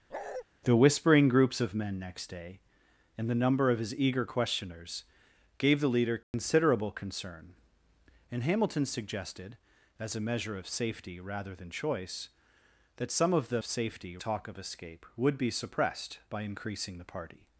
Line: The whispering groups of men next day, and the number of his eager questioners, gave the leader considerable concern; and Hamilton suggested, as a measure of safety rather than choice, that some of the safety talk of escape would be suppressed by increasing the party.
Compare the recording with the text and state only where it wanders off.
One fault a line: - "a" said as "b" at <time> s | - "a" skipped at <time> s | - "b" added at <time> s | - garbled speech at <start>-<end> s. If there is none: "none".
none